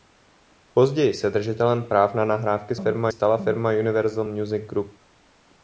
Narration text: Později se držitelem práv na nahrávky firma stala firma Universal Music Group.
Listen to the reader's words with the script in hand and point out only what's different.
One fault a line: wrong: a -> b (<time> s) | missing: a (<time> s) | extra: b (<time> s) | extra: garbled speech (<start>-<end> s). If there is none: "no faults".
no faults